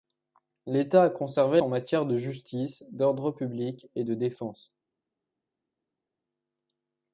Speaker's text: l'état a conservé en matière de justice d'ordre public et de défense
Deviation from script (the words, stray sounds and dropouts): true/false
false